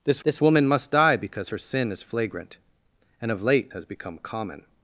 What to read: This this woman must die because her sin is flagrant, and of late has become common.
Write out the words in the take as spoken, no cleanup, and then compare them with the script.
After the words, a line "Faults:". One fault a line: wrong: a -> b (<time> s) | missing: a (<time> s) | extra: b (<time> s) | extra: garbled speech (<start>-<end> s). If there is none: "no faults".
This this woman must die because her sin is flagrant, and of late has become common.
Faults:
no faults